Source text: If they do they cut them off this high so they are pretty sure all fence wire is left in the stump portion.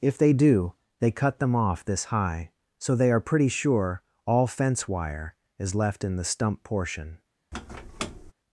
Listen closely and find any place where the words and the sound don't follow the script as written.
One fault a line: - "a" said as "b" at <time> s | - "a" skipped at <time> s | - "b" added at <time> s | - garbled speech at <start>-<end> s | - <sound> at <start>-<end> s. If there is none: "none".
- squeak at 7.5-8.3 s